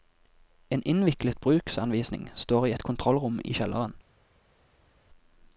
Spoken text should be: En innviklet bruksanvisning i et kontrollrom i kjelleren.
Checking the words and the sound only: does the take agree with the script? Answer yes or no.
no